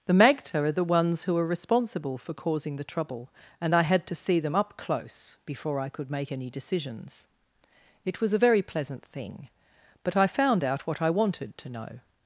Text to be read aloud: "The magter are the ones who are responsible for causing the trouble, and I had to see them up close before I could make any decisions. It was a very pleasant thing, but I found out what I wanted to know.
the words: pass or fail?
pass